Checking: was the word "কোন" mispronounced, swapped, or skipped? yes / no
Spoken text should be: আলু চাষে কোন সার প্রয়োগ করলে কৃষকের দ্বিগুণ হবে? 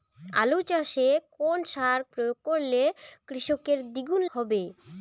no